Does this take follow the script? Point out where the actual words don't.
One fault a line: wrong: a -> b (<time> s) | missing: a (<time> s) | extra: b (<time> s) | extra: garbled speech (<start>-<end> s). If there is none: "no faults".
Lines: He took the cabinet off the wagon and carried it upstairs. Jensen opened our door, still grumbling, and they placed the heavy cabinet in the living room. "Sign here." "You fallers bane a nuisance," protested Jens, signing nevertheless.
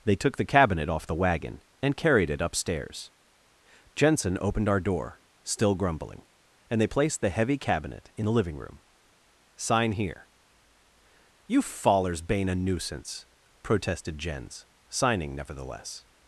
wrong: He -> They (0.0 s)